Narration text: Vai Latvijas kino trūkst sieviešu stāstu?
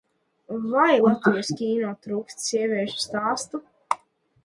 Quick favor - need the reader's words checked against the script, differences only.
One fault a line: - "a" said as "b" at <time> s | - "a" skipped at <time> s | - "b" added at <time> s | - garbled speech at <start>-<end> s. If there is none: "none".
none